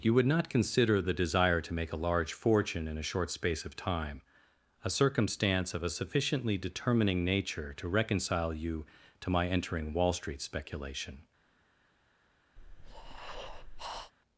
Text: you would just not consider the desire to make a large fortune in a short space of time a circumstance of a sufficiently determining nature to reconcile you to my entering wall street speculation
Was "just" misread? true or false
true